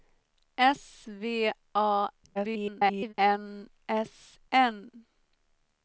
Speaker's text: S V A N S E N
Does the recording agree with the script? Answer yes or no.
no